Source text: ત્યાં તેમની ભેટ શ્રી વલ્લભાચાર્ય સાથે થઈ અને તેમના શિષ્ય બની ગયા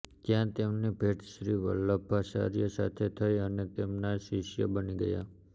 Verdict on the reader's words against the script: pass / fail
pass